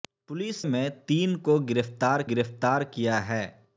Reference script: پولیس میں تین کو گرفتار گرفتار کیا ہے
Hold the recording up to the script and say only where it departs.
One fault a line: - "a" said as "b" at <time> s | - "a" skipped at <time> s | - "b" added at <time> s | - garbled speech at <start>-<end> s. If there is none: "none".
none